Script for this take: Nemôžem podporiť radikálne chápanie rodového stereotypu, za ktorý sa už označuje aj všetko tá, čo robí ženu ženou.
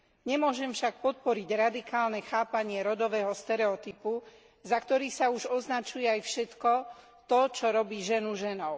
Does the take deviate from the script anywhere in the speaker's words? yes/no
yes